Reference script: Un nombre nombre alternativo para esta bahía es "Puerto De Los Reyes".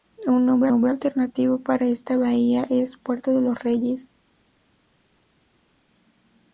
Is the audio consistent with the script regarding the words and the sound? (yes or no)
yes